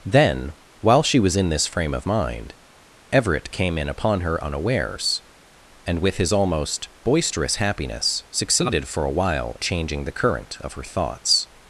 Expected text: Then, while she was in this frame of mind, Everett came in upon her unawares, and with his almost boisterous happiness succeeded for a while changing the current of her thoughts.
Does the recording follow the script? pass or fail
pass